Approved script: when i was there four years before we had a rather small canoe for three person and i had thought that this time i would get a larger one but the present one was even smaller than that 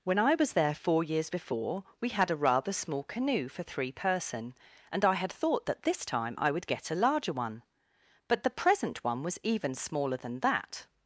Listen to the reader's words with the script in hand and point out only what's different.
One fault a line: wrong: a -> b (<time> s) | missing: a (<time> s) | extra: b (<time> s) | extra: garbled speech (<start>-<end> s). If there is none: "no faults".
no faults